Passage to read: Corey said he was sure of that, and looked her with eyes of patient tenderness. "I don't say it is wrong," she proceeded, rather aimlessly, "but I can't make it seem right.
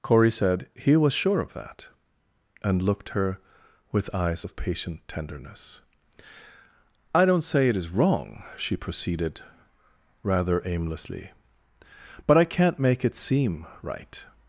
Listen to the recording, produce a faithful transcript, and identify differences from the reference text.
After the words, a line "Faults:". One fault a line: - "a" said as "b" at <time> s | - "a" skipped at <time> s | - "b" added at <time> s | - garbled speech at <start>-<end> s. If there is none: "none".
Corey said he was sure of that, and looked her with eyes of patient tenderness. "I don't say it is wrong," she proceeded, rather aimlessly, "but I can't make it seem right.
Faults:
none